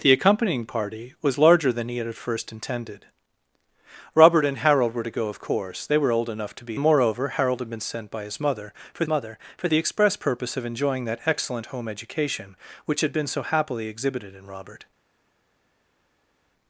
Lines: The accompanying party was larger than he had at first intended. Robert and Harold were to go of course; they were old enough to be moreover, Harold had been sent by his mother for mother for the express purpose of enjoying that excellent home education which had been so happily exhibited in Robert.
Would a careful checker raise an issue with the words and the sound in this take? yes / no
no